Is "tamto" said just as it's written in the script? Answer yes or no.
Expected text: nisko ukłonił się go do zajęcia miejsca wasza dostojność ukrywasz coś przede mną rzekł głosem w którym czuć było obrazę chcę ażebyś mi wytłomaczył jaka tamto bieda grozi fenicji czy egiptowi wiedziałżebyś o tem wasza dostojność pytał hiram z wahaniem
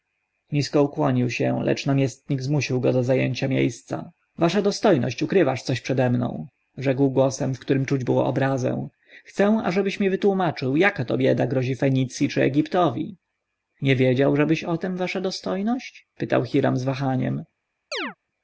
no